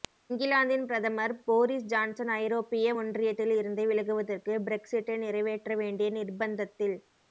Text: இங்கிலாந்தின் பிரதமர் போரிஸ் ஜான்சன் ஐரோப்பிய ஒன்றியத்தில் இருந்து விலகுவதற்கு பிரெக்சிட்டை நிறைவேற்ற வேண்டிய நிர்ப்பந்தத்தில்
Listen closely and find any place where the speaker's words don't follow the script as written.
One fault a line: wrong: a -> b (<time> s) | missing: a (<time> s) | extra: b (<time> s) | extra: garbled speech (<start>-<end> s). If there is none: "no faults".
no faults